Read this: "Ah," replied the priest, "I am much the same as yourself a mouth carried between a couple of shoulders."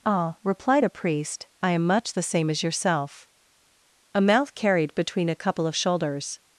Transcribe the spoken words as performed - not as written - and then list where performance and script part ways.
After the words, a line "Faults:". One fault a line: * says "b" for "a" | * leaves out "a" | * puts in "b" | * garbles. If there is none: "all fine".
"Ah," replied a priest, "I am much the same as yourself a mouth carried between a couple of shoulders."
Faults:
* says "a" for "the"